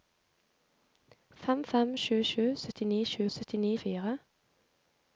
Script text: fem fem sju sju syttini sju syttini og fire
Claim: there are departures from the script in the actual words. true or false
false